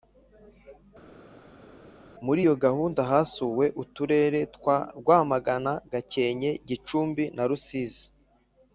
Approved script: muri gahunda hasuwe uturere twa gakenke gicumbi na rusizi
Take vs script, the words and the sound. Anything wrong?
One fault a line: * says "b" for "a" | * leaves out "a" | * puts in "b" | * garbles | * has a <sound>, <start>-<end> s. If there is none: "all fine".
* puts in "iyo"
* puts in "rwamagana"